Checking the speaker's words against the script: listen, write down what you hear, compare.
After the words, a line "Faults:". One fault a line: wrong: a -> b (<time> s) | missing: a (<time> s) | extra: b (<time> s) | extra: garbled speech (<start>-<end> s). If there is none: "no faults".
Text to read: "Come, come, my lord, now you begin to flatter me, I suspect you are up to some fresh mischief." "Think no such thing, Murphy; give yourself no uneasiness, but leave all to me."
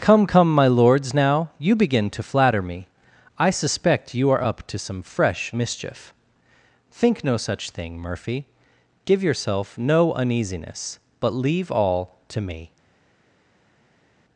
"Come, come, my lords, now you begin to flatter me, I suspect you are up to some fresh mischief." "Think no such thing, Murphy; give yourself no uneasiness, but leave all to me."
Faults:
wrong: lord -> lords (0.7 s)